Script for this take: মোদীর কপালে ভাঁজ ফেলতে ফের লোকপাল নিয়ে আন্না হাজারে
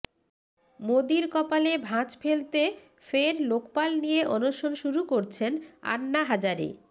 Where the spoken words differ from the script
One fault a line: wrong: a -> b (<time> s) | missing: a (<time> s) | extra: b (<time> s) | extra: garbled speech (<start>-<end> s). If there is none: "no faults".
extra: অনশন শুরু করছেন (4.3 s)